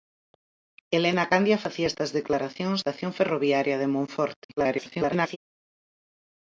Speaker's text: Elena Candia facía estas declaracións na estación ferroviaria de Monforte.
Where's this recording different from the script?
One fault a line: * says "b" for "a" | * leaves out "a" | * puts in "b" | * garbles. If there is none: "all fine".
* leaves out "na"
* garbles